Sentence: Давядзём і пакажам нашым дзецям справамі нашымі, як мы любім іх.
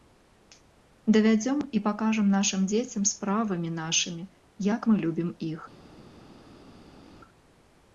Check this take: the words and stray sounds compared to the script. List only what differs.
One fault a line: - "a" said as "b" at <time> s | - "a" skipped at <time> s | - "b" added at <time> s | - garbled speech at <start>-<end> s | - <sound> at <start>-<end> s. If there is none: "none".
none